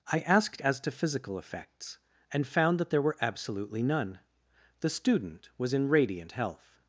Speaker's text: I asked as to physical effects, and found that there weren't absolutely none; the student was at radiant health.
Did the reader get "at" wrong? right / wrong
wrong